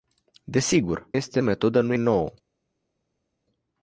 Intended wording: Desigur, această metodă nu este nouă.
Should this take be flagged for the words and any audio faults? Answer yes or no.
yes